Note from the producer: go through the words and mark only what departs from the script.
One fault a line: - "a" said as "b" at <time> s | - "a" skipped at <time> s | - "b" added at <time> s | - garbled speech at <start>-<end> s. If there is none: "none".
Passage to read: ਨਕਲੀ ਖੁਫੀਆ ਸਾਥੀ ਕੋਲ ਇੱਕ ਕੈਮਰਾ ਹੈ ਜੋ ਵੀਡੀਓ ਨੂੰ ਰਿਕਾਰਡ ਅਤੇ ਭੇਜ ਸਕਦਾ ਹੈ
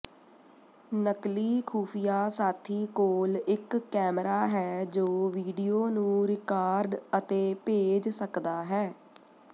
none